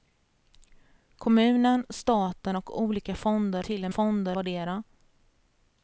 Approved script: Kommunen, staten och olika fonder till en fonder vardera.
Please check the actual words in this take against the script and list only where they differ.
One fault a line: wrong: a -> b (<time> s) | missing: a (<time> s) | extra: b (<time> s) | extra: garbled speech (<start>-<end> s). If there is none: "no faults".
no faults